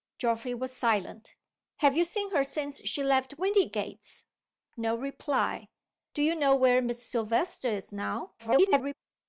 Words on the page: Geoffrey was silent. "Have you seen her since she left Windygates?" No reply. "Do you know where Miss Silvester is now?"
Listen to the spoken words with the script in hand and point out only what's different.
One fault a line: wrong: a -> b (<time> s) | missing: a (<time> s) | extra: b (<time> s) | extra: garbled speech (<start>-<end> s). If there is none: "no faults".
extra: garbled speech (8.4-8.9 s)